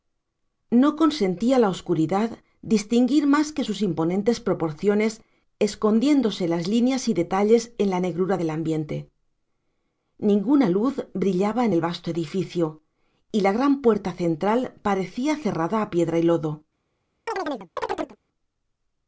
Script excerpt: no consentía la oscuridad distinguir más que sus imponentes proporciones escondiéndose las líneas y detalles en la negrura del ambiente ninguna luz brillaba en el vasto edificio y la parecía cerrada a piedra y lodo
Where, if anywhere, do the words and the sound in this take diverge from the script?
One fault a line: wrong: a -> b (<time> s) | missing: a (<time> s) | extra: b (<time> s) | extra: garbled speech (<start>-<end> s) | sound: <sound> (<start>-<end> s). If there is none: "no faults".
extra: gran puerta central (13.5 s)
sound: chirp (17.3-18.2 s)